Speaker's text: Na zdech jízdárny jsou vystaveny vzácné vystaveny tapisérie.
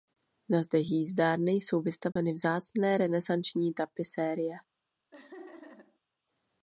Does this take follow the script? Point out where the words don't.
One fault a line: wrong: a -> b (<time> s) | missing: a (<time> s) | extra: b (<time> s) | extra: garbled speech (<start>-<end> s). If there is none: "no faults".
wrong: vystaveny -> renesanční (3.0 s)